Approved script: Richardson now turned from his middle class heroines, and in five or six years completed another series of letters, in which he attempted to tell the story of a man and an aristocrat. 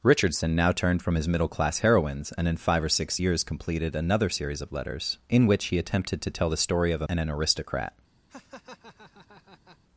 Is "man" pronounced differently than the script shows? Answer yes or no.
yes